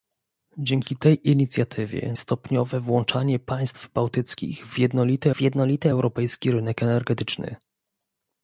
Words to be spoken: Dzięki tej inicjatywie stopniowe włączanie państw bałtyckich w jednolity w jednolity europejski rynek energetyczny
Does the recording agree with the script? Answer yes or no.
yes